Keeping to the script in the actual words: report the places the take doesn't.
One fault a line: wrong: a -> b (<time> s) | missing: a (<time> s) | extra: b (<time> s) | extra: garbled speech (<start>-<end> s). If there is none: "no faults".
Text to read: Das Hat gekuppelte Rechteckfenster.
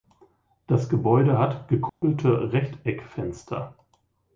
extra: Gebäude (0.9 s)